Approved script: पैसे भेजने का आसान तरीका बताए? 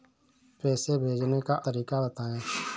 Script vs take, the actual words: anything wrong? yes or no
yes